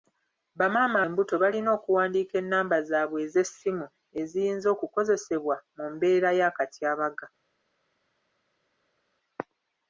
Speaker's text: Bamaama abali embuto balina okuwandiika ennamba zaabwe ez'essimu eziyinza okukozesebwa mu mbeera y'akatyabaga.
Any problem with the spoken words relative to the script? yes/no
yes